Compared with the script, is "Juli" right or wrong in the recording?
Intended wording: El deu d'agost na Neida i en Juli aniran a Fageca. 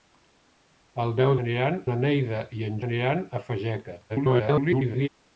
wrong